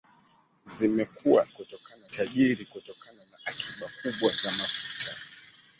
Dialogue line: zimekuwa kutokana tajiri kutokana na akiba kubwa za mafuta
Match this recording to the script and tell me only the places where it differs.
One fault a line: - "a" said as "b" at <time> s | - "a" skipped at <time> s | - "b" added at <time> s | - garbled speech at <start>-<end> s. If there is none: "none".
none